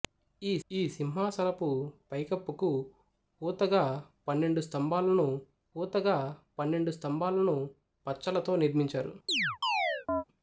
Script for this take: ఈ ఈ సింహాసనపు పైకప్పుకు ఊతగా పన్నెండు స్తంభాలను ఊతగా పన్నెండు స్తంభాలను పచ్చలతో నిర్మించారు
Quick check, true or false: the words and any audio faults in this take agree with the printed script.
false